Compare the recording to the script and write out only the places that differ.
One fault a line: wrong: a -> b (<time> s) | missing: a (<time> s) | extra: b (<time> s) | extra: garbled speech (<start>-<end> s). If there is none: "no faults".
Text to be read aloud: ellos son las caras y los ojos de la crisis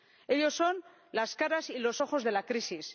no faults